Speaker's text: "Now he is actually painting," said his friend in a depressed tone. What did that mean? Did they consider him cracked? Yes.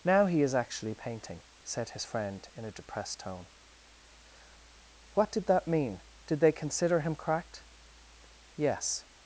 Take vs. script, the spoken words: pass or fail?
pass